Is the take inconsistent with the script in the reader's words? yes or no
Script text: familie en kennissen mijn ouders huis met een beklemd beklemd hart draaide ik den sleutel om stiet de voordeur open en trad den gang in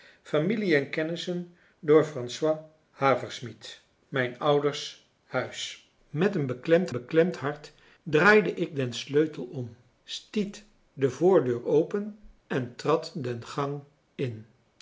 no